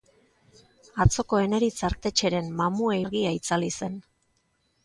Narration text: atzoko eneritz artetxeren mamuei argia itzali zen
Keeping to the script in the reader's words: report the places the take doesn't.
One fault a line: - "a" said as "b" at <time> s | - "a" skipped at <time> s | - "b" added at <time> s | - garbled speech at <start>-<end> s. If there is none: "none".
none